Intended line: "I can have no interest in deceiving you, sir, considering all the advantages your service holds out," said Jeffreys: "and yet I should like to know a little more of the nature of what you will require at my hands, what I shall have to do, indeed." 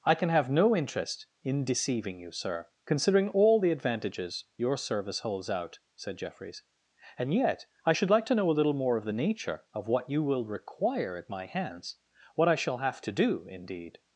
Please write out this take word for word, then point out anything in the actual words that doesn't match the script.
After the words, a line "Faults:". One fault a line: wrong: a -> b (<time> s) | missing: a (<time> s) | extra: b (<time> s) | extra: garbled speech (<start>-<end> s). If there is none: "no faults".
"I can have no interest in deceiving you, sir, considering all the advantages your service holds out," said Jeffreys: "and yet I should like to know a little more of the nature of what you will require at my hands, what I shall have to do, indeed."
Faults:
no faults